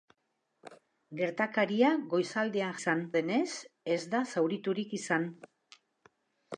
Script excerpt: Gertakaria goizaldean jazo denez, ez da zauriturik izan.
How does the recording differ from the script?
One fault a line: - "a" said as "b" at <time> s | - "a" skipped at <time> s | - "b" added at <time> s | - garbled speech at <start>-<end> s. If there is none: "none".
- "jazo" said as "izan" at 2.8 s